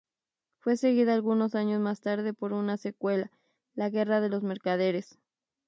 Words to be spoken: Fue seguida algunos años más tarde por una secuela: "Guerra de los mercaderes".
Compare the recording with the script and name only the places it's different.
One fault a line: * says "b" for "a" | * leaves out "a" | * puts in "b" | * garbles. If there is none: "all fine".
* puts in "La"